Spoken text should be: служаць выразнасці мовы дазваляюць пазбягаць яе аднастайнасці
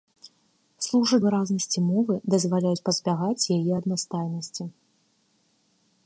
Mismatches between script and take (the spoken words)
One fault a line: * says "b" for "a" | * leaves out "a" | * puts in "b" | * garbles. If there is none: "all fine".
all fine